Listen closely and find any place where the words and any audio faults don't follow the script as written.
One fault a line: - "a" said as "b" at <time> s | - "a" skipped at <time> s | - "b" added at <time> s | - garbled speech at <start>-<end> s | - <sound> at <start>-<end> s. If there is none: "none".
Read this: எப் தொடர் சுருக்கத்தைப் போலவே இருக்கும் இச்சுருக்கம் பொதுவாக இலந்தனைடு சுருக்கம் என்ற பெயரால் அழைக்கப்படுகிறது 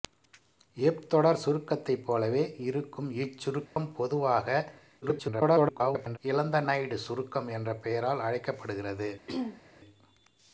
- dropout at 3.7-3.8 s
- garbled speech at 5.0-6.2 s
- throat clearing at 9.3-9.6 s